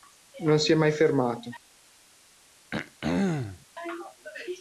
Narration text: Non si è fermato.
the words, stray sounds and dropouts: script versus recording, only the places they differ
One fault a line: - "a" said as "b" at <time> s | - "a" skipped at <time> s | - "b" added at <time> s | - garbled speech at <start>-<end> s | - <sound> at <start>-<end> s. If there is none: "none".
- "mai" added at 0.8 s
- throat clearing at 2.7-3.7 s